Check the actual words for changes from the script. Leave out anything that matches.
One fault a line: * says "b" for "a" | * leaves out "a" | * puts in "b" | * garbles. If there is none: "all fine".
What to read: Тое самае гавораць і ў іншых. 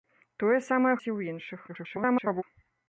* leaves out "гавораць"
* garbles